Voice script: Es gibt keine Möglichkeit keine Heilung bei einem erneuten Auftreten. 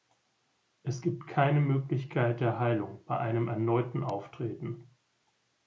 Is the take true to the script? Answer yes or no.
no